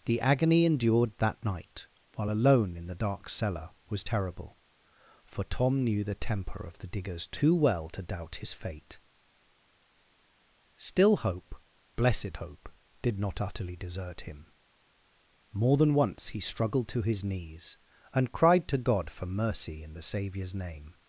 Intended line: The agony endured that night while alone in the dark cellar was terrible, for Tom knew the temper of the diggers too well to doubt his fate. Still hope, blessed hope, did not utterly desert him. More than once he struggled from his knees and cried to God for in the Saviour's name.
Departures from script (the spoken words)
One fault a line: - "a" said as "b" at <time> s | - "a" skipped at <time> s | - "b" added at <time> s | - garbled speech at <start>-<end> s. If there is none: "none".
- "from" said as "to" at 16.9 s
- "mercy" added at 19.2 s